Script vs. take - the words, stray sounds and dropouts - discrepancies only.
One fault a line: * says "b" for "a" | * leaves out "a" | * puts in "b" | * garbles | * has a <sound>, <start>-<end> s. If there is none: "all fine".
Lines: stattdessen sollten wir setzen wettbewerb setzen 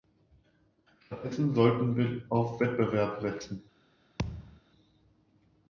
* says "auf" for "setzen"
* has a thud, 4.2-4.6 s